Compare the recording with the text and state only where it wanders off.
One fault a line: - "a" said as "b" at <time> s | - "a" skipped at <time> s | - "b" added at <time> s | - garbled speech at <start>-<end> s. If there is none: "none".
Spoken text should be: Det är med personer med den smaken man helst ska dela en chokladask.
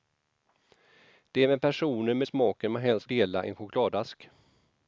- "den" skipped at 2.3 s
- "ska" skipped at 3.0 s